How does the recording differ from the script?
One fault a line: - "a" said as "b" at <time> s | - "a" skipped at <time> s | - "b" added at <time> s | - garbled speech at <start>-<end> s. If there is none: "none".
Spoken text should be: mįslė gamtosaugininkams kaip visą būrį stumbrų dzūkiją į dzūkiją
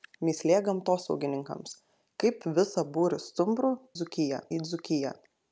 none